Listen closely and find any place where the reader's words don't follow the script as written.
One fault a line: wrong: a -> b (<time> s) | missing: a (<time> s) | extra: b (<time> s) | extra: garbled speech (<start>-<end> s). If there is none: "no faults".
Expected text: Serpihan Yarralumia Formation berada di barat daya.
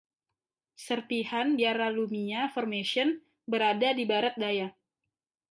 no faults